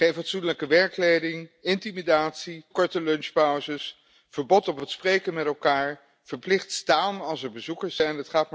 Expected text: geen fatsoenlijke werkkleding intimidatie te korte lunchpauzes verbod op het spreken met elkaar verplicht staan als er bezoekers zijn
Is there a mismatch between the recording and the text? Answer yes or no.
yes